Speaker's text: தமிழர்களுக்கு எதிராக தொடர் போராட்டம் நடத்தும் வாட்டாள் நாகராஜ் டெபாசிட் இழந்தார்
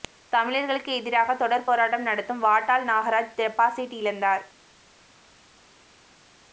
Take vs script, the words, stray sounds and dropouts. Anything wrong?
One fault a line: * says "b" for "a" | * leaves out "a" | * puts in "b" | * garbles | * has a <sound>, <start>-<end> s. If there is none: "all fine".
all fine